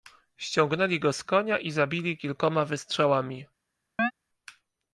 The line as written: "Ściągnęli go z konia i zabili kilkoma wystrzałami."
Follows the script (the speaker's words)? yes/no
yes